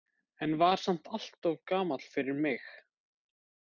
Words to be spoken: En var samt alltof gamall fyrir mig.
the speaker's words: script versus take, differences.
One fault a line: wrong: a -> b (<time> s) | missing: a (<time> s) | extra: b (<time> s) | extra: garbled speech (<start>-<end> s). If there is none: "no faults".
no faults